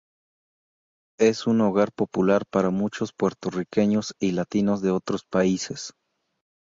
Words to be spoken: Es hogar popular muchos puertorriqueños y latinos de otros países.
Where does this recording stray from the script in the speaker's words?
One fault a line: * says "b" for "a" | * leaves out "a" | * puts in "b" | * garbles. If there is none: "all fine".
* puts in "un"
* puts in "para"